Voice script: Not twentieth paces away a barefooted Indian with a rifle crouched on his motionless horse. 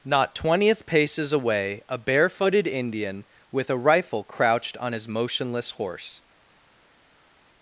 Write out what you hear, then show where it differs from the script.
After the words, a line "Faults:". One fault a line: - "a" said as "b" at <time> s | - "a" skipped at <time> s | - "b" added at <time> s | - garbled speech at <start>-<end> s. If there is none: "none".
Not twentieth paces away a barefooted Indian with a rifle crouched on his motionless horse.
Faults:
none